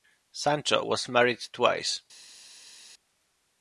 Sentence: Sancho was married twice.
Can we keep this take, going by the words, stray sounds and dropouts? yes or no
yes